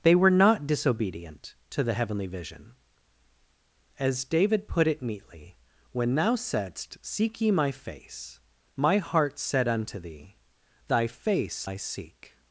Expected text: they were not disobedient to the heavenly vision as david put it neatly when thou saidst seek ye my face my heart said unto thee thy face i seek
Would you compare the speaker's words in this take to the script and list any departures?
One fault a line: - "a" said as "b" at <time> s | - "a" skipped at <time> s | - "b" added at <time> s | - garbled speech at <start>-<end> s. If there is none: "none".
none